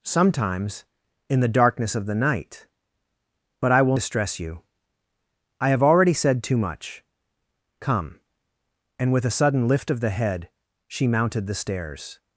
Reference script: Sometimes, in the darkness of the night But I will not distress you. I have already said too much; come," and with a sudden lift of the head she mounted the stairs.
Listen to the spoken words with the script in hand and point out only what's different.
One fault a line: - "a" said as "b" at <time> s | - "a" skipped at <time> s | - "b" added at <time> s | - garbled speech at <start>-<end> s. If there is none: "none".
- "not" skipped at 4.0 s